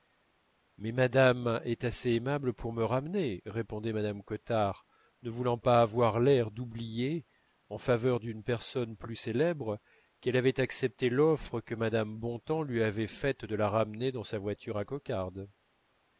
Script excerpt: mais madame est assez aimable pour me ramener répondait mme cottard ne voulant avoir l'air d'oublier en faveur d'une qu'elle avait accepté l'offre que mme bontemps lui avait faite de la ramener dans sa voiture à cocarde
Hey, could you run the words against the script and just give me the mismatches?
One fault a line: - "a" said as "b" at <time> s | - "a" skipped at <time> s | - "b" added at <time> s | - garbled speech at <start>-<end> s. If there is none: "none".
- "pas" added at 5.6 s
- "personne plus célèbre" added at 8.4 s